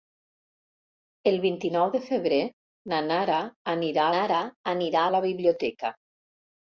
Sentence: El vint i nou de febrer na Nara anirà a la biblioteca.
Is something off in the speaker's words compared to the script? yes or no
yes